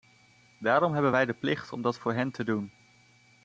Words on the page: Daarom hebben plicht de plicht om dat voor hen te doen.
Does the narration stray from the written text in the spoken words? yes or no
yes